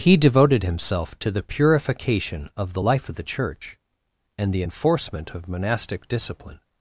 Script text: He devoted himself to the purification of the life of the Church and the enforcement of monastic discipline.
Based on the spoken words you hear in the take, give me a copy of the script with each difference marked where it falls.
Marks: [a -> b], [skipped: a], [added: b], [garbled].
He devoted himself to the purification of the life of the Church and the enforcement of monastic discipline.